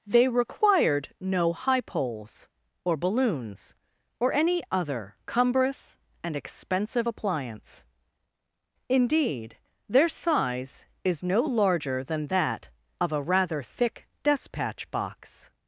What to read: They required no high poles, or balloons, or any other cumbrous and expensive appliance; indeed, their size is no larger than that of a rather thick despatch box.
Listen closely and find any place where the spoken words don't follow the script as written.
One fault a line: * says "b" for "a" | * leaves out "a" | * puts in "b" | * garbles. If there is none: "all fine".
all fine